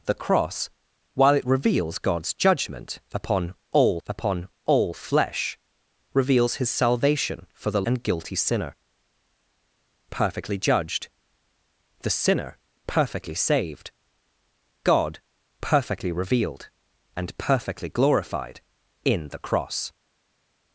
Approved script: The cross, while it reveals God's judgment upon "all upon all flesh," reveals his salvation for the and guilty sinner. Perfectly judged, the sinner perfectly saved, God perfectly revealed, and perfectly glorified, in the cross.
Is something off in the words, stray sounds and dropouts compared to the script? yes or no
no